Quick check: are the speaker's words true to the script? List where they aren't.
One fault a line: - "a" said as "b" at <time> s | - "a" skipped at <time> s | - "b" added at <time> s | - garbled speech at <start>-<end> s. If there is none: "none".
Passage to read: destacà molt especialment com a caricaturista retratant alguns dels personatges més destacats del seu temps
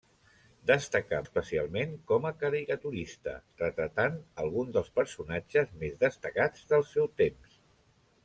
- "molt" skipped at 1.2 s